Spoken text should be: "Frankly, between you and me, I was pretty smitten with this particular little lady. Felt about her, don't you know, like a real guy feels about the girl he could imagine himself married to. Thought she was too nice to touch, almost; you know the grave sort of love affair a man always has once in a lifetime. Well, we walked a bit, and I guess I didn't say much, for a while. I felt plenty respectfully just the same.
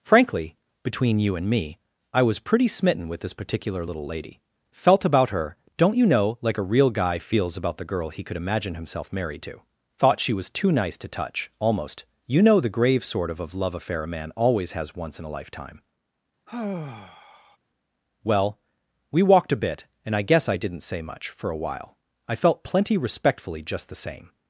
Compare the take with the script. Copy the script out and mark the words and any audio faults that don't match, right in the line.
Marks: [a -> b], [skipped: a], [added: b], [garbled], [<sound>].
"Frankly, between you and me, I was pretty smitten with this particular little lady. Felt about her, don't you know, like a real guy feels about the girl he could imagine himself married to. Thought she was too nice to touch, almost; you know the grave sort of [added: of] love affair a man always has once in a lifetime. [sigh] Well, we walked a bit, and I guess I didn't say much, for a while. I felt plenty respectfully just the same.